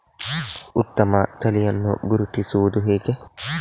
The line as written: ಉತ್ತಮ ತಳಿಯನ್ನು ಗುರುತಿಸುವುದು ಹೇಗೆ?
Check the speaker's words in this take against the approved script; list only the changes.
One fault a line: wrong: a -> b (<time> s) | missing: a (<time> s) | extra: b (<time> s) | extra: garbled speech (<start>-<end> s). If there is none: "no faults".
no faults